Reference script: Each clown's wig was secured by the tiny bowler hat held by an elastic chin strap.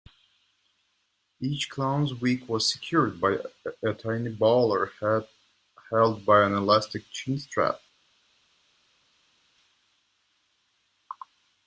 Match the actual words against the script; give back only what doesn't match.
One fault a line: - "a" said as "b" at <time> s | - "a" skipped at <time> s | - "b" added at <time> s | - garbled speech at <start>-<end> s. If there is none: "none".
- "the" said as "a" at 3.8 s